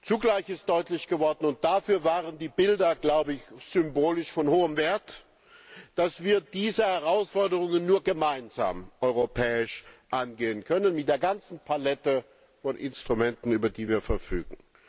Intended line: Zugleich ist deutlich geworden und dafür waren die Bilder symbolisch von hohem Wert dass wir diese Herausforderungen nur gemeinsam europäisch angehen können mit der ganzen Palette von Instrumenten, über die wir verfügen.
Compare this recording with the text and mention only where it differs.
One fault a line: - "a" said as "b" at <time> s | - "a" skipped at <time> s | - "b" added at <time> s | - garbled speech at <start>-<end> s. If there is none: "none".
none